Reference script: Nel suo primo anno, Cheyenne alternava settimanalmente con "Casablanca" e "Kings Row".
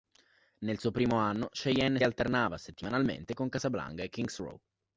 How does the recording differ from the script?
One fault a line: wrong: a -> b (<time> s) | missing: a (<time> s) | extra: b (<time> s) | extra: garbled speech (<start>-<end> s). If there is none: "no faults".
no faults